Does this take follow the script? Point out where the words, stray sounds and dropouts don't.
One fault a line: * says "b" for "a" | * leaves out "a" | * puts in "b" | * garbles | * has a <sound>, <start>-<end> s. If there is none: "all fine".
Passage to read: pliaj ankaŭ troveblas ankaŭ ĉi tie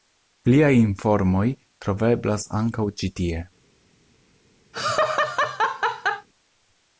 * says "informoj" for "ankaŭ"
* has a laugh, 4.7-6.3 s